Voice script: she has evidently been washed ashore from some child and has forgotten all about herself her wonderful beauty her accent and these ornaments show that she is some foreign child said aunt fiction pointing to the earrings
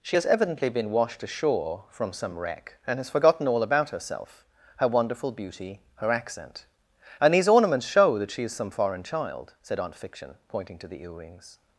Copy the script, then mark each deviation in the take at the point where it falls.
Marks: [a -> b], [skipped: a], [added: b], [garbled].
she has evidently been washed ashore from some [child -> wreck] and has forgotten all about herself her wonderful beauty her accent and these ornaments show that she is some foreign child said aunt fiction pointing to the earrings